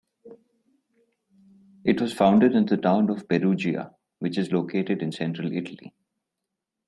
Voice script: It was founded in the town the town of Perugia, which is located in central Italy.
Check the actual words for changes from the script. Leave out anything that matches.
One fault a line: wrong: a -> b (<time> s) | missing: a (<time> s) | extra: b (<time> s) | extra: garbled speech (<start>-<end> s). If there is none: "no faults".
missing: the town (3.1 s)